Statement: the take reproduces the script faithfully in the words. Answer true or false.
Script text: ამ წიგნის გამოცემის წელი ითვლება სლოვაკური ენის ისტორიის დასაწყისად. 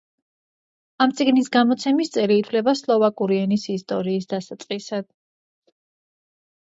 true